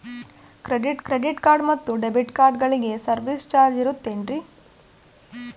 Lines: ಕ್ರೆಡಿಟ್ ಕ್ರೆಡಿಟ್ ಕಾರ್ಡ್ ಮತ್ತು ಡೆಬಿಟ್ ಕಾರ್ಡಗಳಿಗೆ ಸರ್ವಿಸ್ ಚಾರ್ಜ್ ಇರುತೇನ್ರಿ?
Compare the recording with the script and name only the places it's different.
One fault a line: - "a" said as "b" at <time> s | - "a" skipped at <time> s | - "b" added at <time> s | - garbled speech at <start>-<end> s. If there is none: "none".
none